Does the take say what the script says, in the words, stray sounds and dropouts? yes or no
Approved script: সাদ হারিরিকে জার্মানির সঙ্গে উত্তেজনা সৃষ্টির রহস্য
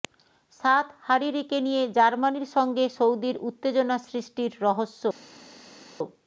no